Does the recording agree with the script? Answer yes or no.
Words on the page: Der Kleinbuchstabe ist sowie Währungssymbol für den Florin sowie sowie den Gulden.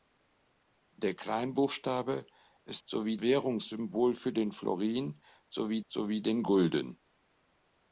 yes